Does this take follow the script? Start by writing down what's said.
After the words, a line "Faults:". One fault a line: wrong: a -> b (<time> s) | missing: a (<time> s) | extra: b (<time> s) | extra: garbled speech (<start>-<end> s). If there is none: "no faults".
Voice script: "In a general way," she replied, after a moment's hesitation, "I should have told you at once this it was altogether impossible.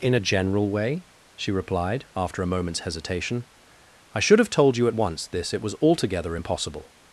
"In a general way," she replied, after a moment's hesitation, "I should have told you at once this it was altogether impossible.
Faults:
no faults